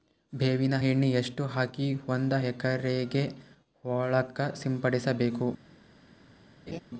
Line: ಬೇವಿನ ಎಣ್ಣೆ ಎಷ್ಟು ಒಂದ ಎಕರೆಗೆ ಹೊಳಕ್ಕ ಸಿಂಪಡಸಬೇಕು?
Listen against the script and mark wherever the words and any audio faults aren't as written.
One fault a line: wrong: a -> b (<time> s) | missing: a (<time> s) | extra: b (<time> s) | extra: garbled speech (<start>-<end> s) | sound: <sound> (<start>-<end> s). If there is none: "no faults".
extra: ಹಾಕಿ (1.4 s)
sound: laugh (6.7-6.8 s)